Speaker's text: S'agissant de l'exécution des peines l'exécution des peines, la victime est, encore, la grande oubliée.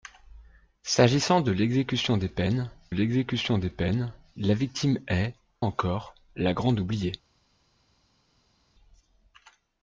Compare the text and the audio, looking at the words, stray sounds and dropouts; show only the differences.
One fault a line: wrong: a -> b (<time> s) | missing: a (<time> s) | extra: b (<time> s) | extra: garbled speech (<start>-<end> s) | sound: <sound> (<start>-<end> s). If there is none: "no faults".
no faults